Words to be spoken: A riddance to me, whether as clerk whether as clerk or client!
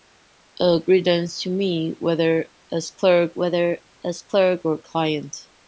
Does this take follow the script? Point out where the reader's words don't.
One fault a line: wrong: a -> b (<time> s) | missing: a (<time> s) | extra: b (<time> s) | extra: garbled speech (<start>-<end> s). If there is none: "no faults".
no faults